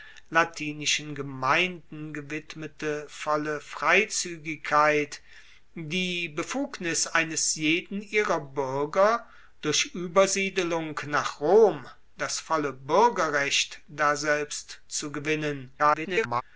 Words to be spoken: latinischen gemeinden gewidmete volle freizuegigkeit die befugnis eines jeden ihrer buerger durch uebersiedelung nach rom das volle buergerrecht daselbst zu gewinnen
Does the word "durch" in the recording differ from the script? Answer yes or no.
no